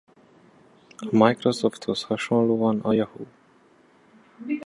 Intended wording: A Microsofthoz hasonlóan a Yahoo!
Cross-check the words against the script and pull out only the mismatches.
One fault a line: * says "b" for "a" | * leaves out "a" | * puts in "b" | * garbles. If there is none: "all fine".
all fine